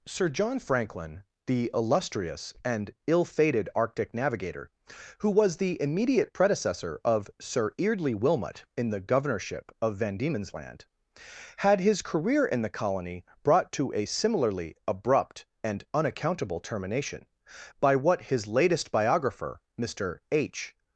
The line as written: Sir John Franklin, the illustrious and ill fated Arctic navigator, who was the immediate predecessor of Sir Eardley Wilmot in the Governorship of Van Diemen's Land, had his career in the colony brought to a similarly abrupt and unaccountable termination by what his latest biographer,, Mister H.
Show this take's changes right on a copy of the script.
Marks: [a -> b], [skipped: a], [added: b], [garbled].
Sir John Franklin, the illustrious and ill fated Arctic navigator, who was the immediate predecessor of Sir Eardley Wilmot in the Governorship of Van Diemen's Land, had his career in the colony brought to a similarly abrupt and unaccountable termination by what his latest biographer,, Mister H.